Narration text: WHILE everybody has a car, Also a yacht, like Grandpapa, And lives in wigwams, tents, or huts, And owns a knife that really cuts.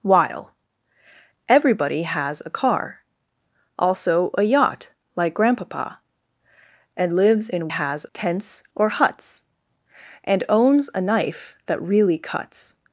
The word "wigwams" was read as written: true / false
false